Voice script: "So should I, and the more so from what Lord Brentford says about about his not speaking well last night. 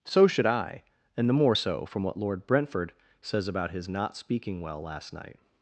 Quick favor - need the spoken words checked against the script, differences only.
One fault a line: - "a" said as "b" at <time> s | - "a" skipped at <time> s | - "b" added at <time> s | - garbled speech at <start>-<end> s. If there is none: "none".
- "about" skipped at 3.7 s